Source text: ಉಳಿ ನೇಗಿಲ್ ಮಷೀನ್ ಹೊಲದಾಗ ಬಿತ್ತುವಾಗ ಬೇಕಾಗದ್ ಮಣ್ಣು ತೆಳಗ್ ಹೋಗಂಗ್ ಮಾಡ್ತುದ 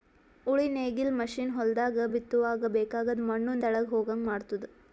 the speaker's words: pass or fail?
pass